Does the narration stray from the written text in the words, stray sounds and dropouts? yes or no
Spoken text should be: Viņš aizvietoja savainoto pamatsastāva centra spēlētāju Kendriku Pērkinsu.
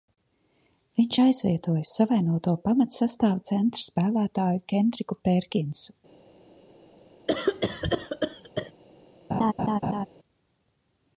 yes